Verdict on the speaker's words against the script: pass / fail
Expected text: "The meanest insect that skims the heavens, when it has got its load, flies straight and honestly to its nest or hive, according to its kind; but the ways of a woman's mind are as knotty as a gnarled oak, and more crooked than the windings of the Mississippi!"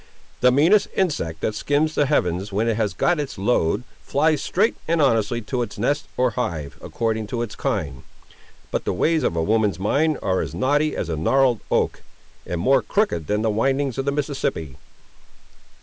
pass